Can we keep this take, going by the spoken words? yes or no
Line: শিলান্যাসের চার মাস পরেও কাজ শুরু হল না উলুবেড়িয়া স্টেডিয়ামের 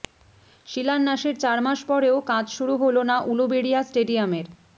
yes